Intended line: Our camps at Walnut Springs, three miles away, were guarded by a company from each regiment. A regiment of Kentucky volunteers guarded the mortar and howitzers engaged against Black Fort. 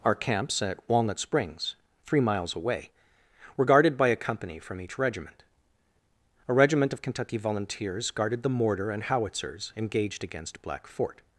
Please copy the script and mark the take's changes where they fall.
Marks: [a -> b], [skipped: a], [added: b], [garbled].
Our camps at Walnut Springs, three miles away, were guarded by a company from each regiment. A regiment of Kentucky volunteers guarded the mortar and howitzers engaged against Black Fort.